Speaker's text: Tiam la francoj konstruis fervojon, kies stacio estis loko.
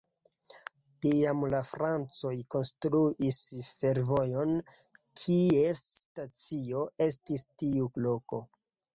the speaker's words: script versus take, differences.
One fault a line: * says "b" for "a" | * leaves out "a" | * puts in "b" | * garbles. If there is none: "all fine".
* puts in "tiu"